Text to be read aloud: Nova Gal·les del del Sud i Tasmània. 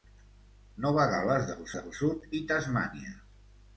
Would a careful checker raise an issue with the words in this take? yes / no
no